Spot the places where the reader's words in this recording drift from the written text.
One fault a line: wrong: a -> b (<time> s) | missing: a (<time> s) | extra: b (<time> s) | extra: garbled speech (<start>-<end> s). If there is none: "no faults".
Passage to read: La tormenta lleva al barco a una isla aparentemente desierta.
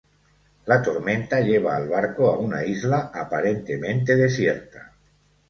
no faults